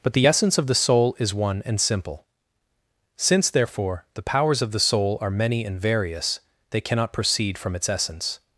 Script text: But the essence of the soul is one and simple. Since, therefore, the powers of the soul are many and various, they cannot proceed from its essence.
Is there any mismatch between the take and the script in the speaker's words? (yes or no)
no